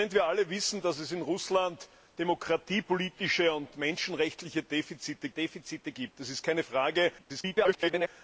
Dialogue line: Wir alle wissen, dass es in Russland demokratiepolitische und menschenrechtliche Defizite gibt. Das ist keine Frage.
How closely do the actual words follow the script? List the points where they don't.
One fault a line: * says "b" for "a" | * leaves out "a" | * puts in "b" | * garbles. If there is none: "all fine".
* puts in "Defizite"
* garbles